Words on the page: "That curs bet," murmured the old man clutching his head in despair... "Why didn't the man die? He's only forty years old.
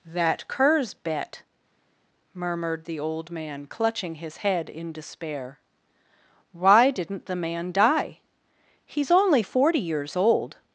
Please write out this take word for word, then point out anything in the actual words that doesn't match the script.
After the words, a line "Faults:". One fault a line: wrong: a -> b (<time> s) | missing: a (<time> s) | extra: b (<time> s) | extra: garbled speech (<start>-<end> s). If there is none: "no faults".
"That curs bet," murmured the old man clutching his head in despair... "Why didn't the man die? He's only forty years old.
Faults:
no faults